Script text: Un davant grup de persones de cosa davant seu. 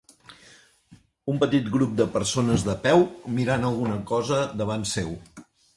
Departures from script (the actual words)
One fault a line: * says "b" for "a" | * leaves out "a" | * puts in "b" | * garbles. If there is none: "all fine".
* says "petit" for "davant"
* puts in "peu mirant alguna"